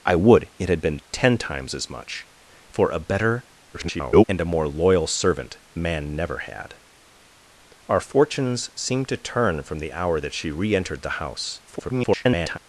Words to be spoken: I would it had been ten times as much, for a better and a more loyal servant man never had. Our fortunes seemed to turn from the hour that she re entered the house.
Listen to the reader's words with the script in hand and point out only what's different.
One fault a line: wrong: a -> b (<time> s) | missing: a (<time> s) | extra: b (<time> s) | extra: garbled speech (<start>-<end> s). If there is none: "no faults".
extra: garbled speech (3.7-4.2 s)
extra: garbled speech (11.7-12.6 s)